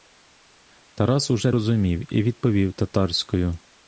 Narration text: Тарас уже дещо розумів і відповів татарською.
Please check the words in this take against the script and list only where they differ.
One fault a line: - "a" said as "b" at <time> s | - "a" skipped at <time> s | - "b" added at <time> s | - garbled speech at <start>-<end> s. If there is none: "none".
- "дещо" skipped at 1.5 s